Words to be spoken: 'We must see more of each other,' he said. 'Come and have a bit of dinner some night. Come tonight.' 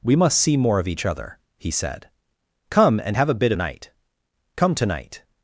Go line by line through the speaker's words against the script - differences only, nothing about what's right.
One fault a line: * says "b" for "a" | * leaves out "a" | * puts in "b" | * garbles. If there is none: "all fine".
* leaves out "of dinner some"